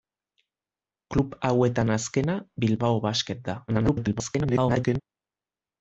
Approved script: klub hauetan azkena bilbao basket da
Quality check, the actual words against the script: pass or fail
fail